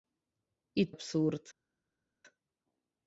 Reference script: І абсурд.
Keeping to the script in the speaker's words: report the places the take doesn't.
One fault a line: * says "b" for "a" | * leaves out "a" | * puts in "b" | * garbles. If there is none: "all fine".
all fine